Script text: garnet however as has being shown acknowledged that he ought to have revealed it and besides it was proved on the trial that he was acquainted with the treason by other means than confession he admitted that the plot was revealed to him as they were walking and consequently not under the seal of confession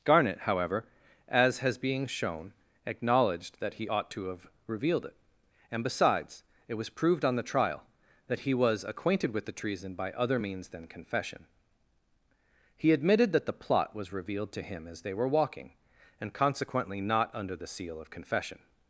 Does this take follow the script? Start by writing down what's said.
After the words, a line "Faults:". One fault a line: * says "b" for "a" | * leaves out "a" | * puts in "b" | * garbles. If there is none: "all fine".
garnet however as has being shown acknowledged that he ought to have revealed it and besides it was proved on the trial that he was acquainted with the treason by other means than confession he admitted that the plot was revealed to him as they were walking and consequently not under the seal of confession
Faults:
all fine